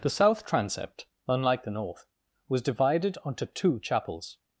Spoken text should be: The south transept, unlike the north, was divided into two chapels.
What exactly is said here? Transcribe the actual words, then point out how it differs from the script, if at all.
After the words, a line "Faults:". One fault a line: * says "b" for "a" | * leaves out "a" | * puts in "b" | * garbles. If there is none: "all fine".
The south transept, unlike the north, was divided onto two chapels.
Faults:
* says "onto" for "into"